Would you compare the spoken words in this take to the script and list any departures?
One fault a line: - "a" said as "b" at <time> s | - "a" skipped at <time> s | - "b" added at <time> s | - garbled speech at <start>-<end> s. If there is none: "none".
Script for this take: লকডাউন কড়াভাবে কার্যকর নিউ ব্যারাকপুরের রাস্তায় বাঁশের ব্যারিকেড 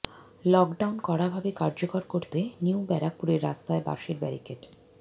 - "করতে" added at 2.0 s